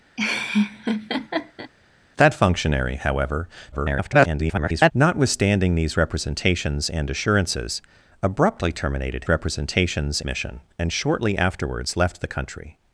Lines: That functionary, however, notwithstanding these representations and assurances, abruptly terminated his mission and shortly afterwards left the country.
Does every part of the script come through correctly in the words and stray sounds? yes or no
no